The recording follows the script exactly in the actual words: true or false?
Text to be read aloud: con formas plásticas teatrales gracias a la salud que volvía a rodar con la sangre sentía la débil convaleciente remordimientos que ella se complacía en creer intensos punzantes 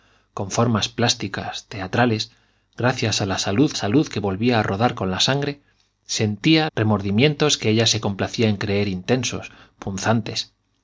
false